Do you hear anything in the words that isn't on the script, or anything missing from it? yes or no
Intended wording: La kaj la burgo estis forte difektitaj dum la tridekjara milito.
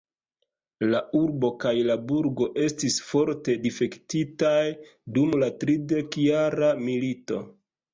yes